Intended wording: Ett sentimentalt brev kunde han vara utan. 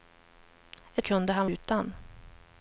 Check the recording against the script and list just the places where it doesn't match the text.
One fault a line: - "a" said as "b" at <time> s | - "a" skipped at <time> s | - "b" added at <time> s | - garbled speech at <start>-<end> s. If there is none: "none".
- "sentimentalt brev" skipped at 1.1 s
- "vara" skipped at 1.5 s